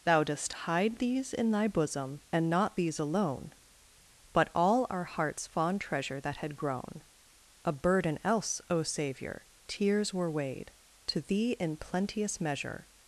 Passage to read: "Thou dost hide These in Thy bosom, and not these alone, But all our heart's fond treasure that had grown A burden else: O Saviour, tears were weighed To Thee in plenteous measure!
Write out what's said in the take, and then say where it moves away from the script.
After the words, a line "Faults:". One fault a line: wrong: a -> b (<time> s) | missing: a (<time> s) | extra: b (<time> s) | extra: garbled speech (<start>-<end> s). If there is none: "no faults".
"Thou dost hide These in Thy bosom, and not these alone, But all our heart's fond treasure that had grown A burden else: O Saviour, tears were weighed To Thee in plenteous measure!
Faults:
no faults